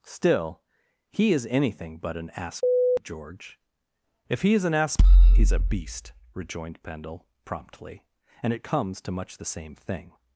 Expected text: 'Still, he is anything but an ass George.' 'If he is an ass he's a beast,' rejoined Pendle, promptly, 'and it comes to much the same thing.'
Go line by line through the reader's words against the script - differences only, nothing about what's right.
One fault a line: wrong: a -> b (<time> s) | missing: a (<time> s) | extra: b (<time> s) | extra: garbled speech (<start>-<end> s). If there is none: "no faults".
no faults